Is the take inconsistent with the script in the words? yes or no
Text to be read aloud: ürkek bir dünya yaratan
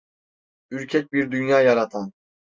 no